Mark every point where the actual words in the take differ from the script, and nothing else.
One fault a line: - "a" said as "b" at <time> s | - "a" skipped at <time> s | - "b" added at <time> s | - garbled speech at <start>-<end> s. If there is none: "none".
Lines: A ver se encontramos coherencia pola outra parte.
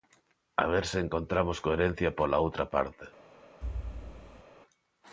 none